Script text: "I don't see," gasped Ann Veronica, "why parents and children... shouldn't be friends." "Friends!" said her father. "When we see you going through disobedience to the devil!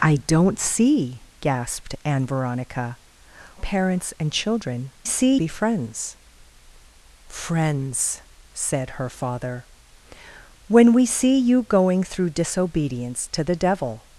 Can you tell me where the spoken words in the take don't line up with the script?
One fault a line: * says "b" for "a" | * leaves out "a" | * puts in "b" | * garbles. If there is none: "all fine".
* leaves out "why"
* says "see" for "shouldn't"